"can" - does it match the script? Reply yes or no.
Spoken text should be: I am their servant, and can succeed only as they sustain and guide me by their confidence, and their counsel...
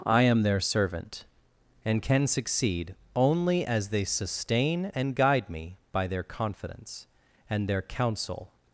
yes